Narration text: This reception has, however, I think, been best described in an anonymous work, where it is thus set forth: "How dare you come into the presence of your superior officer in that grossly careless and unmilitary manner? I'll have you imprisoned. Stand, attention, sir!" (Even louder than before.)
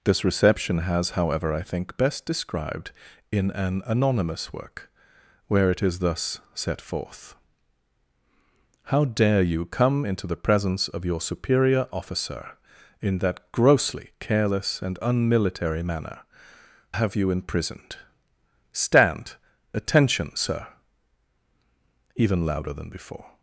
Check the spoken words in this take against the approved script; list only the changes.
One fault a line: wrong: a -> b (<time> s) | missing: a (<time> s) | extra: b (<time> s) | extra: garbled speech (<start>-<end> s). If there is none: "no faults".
missing: been (2.0 s)
missing: I'll (16.2 s)